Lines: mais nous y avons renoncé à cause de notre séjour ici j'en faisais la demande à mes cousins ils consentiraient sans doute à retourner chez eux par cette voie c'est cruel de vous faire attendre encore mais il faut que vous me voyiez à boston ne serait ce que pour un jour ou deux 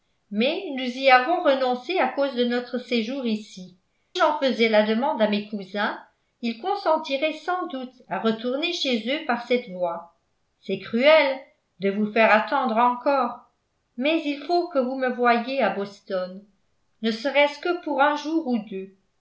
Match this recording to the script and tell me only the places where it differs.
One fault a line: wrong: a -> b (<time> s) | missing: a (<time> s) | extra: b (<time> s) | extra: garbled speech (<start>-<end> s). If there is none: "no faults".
no faults